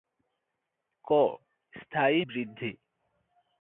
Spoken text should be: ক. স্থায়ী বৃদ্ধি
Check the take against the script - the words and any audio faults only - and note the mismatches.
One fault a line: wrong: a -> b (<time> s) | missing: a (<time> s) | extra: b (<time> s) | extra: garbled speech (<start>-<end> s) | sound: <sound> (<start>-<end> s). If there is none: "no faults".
no faults